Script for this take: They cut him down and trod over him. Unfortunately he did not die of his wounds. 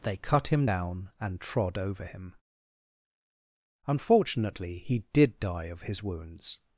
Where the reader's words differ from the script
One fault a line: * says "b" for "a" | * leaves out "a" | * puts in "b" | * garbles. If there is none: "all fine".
* leaves out "not"